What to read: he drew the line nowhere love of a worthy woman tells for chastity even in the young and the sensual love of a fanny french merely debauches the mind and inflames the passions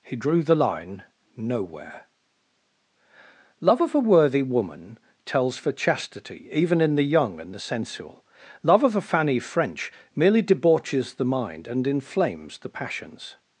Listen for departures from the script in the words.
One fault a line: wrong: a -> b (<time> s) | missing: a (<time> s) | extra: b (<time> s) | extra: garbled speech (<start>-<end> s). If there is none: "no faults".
no faults